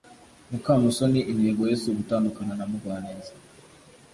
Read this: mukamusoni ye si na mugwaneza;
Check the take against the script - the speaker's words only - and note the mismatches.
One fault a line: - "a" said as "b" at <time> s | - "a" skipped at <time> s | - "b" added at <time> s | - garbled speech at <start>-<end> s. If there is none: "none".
- "intego" added at 1.3 s
- "ugutandukana" added at 1.9 s